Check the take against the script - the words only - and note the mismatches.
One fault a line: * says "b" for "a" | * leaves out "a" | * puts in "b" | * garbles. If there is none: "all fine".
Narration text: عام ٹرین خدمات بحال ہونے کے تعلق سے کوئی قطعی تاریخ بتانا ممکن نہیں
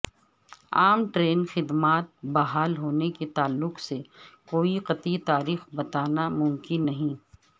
all fine